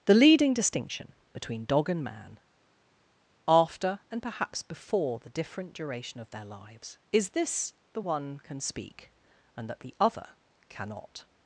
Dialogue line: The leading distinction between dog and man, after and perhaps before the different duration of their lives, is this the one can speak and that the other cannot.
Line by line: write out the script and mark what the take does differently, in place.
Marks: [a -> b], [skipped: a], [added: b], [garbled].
The leading distinction between dog and man, after and perhaps before the different duration of their lives, is this the one can speak and that the other cannot.